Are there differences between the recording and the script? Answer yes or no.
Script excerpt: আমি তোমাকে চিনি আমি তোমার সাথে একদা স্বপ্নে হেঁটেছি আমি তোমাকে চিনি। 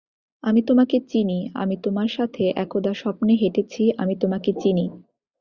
no